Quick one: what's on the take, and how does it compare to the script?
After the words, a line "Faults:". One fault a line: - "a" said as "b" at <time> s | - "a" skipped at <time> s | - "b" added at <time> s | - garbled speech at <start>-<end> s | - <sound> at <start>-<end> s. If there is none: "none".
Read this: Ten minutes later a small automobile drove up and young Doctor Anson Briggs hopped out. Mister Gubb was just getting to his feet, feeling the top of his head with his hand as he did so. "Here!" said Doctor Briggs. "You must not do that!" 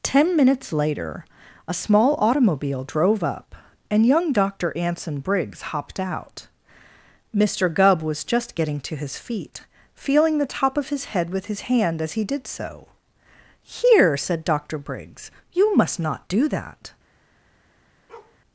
Ten minutes later a small automobile drove up and young Doctor Anson Briggs hopped out. Mister Gubb was just getting to his feet, feeling the top of his head with his hand as he did so. "Here!" said Doctor Briggs. "You must not do that!"
Faults:
- bark at 18.1-18.4 s